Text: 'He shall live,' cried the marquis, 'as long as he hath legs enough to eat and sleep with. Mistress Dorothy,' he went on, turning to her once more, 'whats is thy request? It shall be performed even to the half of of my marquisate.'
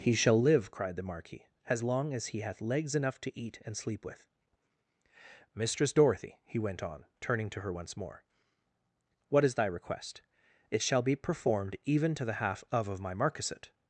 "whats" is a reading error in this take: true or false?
true